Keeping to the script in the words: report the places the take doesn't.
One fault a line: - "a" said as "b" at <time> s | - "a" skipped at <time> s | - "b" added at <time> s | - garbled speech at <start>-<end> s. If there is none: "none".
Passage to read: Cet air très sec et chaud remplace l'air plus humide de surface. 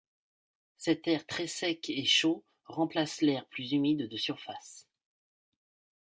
none